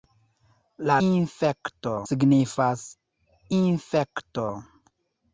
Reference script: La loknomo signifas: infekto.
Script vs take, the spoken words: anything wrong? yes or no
yes